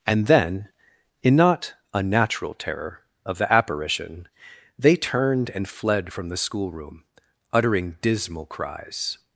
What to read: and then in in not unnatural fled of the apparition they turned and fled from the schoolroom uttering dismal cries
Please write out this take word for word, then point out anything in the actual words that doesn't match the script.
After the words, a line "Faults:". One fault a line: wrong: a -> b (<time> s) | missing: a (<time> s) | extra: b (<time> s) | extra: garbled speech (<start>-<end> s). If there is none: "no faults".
and then in not unnatural terror of the apparition they turned and fled from the schoolroom uttering dismal cries
Faults:
missing: in (1.4 s)
wrong: fled -> terror (2.5 s)